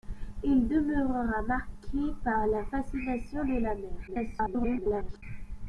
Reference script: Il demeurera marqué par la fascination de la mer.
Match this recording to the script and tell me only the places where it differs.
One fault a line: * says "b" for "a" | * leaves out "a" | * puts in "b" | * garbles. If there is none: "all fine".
* garbles